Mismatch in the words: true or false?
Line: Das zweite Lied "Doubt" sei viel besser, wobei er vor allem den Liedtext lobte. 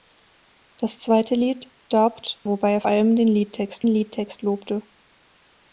true